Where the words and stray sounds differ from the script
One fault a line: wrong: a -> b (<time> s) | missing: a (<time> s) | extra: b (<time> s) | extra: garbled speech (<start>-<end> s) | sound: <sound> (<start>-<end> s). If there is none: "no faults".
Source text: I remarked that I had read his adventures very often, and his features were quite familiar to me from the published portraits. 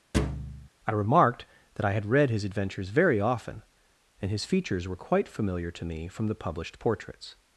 sound: thud (0.1-0.7 s)